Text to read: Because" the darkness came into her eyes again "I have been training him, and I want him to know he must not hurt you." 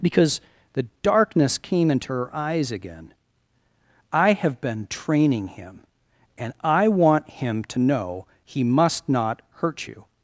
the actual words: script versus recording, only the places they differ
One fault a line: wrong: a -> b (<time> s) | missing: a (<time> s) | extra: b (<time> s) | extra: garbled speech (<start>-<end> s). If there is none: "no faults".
no faults